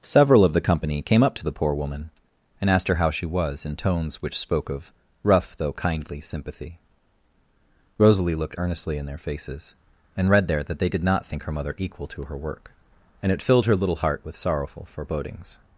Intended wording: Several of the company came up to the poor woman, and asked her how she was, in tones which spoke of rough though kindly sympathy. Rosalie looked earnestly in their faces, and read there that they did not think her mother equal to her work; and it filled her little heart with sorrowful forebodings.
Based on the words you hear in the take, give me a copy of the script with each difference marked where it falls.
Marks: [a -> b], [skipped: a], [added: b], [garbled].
Several of the company came up to the poor woman, and asked her how she was, in tones which spoke of rough though kindly sympathy. Rosalie looked earnestly in their faces, and read there that they did not think her mother equal to her work; and it filled her little heart with sorrowful forebodings.